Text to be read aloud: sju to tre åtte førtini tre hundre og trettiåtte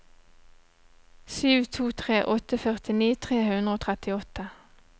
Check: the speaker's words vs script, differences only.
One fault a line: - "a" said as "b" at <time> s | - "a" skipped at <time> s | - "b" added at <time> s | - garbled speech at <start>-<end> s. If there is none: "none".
none